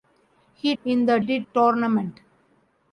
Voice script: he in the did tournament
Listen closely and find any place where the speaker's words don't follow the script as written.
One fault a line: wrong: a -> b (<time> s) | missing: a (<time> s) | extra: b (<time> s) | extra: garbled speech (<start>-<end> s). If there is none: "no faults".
no faults